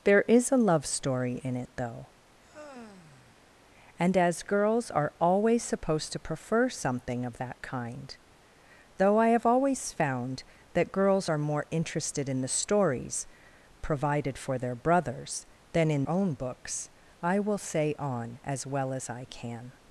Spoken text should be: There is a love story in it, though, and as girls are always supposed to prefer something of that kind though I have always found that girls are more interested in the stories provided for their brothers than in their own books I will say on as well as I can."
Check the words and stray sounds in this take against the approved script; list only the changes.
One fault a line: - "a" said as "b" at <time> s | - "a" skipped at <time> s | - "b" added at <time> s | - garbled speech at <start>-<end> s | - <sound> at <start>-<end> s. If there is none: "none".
- sigh at 2.4-3.5 s
- "their" skipped at 16.0 s